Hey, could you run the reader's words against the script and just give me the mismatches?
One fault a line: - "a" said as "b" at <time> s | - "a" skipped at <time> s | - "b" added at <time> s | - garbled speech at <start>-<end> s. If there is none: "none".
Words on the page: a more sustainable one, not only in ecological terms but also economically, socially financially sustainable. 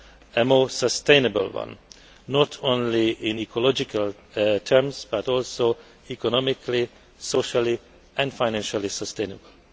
- "and" added at 8.2 s